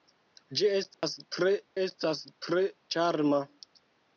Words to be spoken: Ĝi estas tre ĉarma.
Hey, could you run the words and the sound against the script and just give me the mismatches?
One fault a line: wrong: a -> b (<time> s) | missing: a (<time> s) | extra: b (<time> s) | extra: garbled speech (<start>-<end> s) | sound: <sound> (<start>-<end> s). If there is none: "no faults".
sound: dropout (0.9-1.0 s)
extra: estas tre (1.8 s)